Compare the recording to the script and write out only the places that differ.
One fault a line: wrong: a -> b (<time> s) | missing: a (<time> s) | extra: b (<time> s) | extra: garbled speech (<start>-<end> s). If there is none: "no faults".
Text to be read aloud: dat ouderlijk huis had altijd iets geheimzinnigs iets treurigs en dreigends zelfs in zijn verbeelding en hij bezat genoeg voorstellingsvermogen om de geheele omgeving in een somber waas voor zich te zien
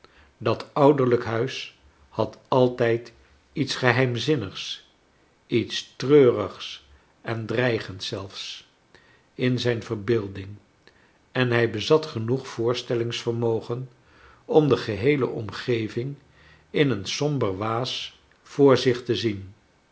no faults